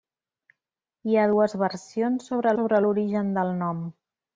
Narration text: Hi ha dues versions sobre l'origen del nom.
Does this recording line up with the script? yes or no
no